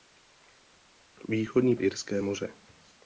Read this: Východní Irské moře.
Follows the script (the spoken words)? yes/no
yes